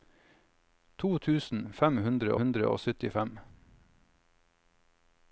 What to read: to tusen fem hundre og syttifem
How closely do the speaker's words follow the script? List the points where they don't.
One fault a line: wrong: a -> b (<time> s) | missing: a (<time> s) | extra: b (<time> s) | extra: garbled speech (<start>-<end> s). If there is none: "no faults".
extra: hundre (2.4 s)